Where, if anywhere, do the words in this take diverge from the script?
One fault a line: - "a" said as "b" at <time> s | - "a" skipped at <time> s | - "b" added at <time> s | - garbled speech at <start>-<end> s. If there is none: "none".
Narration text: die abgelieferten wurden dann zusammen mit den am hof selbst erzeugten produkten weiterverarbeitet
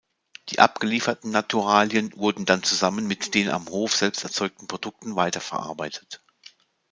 - "naturalien" added at 1.3 s